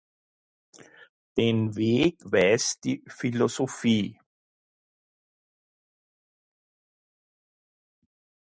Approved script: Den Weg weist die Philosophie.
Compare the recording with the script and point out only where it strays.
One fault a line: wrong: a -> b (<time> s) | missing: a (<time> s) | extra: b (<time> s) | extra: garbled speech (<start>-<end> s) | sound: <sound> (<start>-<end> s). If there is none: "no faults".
no faults